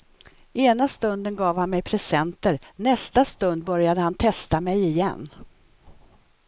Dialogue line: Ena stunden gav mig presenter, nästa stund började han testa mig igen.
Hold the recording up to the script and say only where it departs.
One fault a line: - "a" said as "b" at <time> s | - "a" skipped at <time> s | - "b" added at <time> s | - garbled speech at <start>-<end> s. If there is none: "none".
- "han" added at 1.6 s